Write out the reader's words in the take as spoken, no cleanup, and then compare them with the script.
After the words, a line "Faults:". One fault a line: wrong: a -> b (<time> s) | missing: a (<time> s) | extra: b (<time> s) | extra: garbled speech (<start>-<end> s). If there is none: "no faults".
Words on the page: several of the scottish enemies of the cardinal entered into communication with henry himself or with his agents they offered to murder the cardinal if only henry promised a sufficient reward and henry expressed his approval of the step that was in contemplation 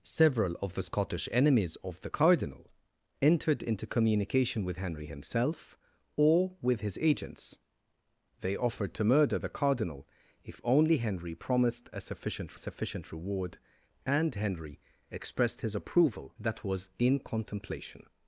several of the scottish enemies of the cardinal entered into communication with henry himself or with his agents they offered to murder the cardinal if only henry promised a sufficient sufficient reward and henry expressed his approval that was in contemplation
Faults:
extra: sufficient (12.5 s)
missing: of the step (16.3 s)